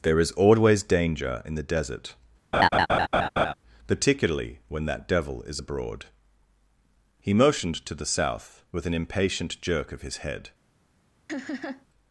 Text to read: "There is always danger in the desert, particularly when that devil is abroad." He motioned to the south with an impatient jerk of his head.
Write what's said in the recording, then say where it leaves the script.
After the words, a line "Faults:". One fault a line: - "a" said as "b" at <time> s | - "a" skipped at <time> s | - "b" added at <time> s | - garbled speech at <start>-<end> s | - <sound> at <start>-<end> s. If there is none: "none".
"There is always danger in the desert, particularly when that devil is abroad." He motioned to the south with an impatient jerk of his head.
Faults:
- laugh at 2.5-3.5 s
- laugh at 11.3-11.9 s